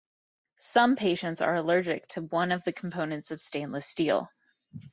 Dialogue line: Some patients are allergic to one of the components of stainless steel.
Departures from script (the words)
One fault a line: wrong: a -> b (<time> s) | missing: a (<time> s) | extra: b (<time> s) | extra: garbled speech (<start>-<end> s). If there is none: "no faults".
no faults